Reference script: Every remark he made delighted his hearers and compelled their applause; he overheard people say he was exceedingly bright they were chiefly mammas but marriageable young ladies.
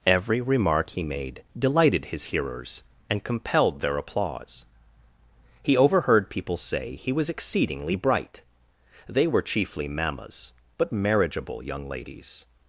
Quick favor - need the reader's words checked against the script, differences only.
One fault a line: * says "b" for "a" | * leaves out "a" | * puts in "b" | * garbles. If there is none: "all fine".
all fine